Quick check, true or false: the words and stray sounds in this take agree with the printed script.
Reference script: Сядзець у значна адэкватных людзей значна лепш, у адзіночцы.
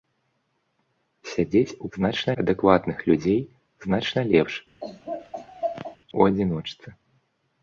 false